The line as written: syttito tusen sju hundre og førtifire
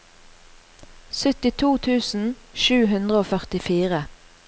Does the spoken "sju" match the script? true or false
true